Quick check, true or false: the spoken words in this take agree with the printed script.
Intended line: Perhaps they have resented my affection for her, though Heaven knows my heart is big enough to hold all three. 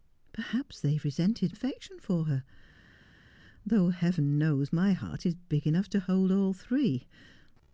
false